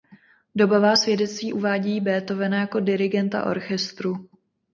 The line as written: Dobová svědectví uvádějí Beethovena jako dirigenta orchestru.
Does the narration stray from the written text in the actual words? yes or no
no